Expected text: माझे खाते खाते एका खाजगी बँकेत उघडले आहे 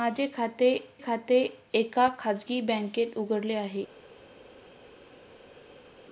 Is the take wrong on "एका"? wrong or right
right